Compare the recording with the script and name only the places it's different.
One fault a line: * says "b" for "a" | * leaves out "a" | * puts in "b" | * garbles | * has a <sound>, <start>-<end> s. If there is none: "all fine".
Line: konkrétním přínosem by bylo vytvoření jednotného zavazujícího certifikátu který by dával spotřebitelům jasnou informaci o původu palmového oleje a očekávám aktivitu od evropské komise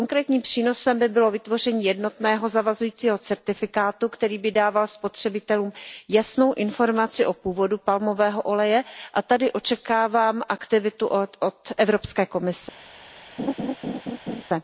* puts in "tady"
* has a laugh, 13.4-14.4 s